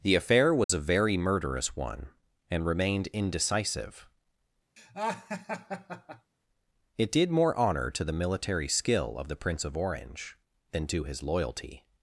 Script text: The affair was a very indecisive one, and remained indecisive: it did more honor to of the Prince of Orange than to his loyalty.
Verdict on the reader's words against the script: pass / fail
fail